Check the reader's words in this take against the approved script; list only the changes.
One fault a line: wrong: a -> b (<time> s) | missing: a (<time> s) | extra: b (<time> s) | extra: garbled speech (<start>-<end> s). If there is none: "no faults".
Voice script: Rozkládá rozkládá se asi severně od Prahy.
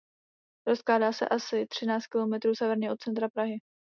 missing: rozkládá (1.1 s)
extra: třináct kilometrů (1.7 s)
extra: centra (3.0 s)